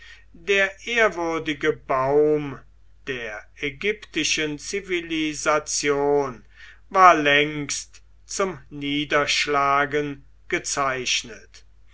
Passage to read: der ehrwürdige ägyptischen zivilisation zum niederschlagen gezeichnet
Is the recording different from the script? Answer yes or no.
yes